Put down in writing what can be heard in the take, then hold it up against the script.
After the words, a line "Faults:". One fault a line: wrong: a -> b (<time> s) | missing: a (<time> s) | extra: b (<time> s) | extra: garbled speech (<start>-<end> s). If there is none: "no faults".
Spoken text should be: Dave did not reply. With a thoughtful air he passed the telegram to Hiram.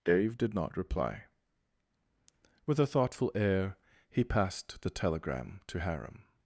Dave did not reply. With a thoughtful air he passed the telegram to Hiram.
Faults:
no faults